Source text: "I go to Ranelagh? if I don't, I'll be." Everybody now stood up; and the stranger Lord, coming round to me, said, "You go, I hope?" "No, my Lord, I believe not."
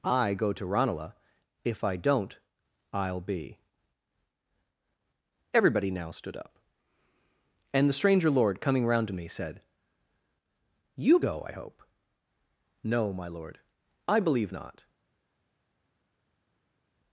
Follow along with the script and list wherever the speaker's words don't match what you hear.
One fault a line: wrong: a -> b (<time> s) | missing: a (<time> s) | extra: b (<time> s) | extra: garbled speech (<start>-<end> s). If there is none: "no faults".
no faults